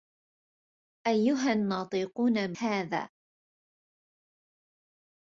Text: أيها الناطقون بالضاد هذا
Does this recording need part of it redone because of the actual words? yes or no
yes